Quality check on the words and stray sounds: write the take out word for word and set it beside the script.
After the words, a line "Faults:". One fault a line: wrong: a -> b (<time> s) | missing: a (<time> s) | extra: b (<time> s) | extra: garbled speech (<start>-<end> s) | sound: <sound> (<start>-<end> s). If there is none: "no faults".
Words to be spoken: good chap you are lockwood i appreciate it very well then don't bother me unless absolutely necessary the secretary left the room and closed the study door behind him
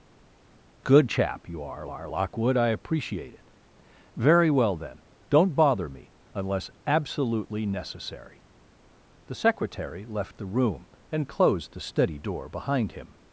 good chap you are are lockwood i appreciate it very well then don't bother me unless absolutely necessary the secretary left the room and closed the study door behind him
Faults:
extra: are (1.9 s)